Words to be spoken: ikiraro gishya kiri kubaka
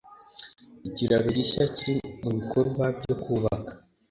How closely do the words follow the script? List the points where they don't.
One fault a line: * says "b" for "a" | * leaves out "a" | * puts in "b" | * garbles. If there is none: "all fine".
* puts in "mubikorwa byo"